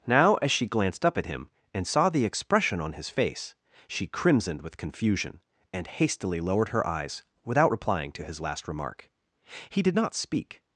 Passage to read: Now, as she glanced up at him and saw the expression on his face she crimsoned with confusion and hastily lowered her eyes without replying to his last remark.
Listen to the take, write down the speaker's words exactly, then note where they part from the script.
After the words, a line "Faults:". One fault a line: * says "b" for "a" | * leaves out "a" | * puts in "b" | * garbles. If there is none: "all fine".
Now, as she glanced up at him and saw the expression on his face she crimsoned with confusion and hastily lowered her eyes without replying to his last remark. He did not speak
Faults:
* puts in "He did not speak"